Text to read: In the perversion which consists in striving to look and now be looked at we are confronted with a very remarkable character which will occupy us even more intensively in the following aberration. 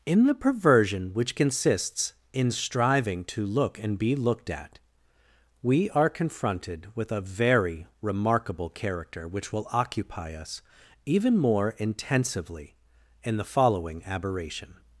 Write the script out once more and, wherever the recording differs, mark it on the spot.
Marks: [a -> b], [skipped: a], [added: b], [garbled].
In the perversion which consists in striving to look and [skipped: now] be looked at we are confronted with a very remarkable character which will occupy us even more intensively in the following aberration.